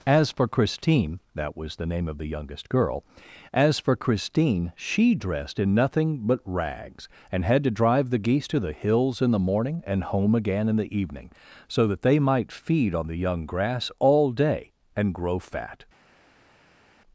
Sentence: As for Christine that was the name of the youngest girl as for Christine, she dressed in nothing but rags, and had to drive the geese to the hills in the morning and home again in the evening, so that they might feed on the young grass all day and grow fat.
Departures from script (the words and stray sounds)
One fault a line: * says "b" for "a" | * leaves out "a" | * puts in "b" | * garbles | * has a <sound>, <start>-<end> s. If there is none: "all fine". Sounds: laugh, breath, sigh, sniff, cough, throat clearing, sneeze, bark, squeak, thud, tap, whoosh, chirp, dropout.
all fine